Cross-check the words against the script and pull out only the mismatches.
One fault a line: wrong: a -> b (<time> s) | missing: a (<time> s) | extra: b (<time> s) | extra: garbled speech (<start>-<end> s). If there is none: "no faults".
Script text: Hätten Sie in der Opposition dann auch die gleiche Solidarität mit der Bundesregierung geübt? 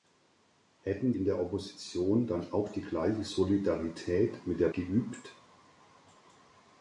missing: Sie (1.1 s)
missing: Bundesregierung (4.7 s)